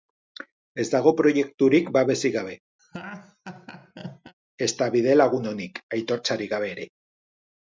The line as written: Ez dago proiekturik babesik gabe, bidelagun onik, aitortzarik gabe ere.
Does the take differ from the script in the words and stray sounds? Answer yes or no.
yes